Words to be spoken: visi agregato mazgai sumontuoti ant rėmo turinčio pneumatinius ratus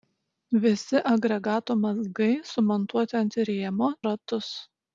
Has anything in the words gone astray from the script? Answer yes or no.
yes